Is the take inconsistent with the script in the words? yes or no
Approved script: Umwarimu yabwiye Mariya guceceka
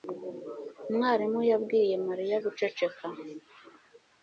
no